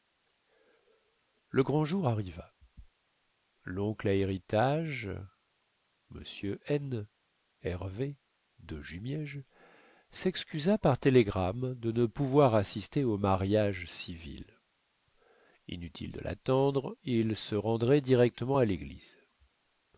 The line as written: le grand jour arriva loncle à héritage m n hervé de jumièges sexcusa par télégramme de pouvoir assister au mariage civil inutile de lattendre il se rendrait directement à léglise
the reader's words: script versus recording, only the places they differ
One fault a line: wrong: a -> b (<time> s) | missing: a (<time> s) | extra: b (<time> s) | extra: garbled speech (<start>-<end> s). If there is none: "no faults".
extra: ne (11.9 s)